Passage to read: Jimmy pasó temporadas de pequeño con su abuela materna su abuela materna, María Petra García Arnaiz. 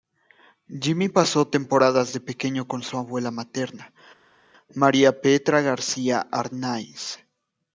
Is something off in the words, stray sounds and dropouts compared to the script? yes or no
yes